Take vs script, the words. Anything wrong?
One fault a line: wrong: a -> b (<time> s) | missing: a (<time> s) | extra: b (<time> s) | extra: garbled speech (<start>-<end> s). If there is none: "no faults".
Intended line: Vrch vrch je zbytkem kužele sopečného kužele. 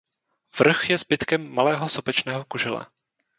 missing: vrch (0.9 s)
wrong: kužele -> malého (1.5 s)